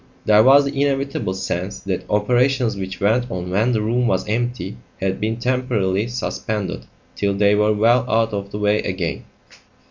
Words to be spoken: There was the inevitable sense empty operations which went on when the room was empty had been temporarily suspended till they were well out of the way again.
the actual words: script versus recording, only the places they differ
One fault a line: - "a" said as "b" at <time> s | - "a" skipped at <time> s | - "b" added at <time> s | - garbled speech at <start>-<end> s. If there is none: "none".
- "empty" said as "that" at 1.8 s